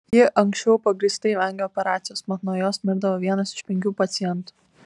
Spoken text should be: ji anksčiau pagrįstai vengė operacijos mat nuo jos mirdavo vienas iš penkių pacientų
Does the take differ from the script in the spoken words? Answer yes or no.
no